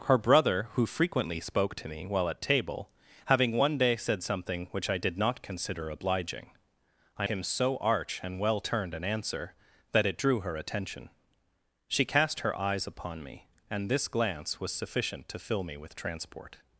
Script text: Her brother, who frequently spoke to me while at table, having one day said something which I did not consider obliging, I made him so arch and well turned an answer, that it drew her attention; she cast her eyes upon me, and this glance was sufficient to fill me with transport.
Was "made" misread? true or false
true